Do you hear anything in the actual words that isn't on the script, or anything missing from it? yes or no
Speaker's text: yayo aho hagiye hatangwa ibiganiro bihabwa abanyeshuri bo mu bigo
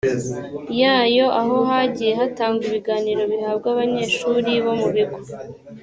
no